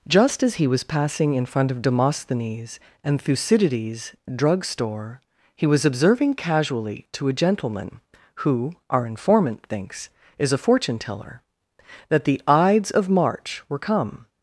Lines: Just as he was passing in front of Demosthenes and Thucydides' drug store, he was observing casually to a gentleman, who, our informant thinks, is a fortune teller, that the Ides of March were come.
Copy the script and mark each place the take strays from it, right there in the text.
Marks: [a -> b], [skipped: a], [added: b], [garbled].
Just as he was passing in front of Demosthenes and Thucydides' drug store, he was observing casually to a gentleman, who, our informant thinks, is a fortune teller, that the Ides of March were come.